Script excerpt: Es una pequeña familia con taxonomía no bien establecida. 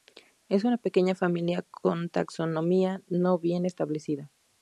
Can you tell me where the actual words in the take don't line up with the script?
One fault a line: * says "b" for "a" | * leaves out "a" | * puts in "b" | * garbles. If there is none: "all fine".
all fine